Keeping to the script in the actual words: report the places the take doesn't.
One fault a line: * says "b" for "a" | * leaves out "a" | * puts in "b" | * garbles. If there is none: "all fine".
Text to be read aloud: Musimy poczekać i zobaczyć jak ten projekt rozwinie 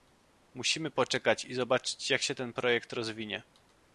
* puts in "się"